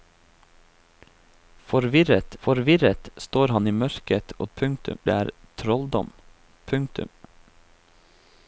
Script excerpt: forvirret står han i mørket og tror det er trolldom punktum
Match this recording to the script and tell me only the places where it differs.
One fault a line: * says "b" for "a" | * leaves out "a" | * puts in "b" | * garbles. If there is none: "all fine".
* puts in "forvirret"
* says "punktum" for "tror"